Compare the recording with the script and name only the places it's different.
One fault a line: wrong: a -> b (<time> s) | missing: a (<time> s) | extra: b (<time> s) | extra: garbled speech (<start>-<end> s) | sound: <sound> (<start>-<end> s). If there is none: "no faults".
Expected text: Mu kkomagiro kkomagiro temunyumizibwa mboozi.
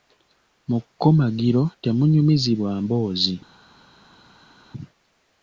missing: kkomagiro (1.6 s)